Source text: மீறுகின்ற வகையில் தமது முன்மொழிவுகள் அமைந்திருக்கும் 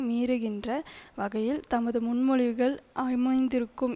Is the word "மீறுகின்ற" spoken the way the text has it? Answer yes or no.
yes